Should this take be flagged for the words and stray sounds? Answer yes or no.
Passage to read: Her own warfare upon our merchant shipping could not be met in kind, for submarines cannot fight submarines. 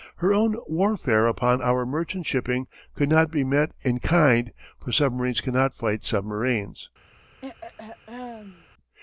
yes